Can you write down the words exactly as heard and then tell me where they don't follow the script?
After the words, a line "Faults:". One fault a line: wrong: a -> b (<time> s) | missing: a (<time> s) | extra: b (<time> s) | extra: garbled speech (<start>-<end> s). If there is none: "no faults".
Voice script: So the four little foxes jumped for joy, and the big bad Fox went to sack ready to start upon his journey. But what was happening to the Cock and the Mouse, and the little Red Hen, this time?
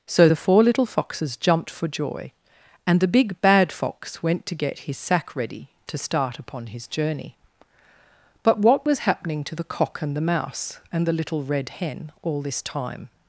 So the four little foxes jumped for joy, and the big bad Fox went to get his sack ready to start upon his journey. But what was happening to the Cock and the Mouse, and the little Red Hen, all this time?
Faults:
extra: get his (4.6 s)
extra: all (12.2 s)